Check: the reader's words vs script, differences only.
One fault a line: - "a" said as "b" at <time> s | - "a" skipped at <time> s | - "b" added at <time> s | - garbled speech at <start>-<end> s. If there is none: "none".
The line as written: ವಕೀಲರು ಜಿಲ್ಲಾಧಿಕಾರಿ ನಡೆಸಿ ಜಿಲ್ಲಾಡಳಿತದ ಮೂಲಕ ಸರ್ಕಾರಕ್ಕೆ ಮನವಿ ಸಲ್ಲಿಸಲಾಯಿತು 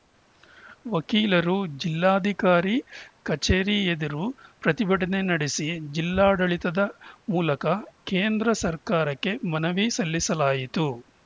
- "ಕಚೇರಿ ಎದುರು ಪ್ರತಿಭಟನೆ" added at 3.2 s
- "ಕೇಂದ್ರ" added at 8.1 s